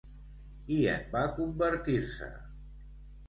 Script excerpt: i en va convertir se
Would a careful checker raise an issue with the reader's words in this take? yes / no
no